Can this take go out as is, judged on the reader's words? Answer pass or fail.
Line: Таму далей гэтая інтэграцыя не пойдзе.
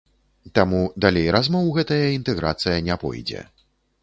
fail